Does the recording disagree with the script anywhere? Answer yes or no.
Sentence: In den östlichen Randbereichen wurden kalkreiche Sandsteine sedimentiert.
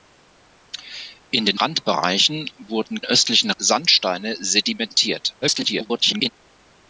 yes